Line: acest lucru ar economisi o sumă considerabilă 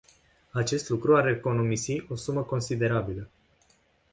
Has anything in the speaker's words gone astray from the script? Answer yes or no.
no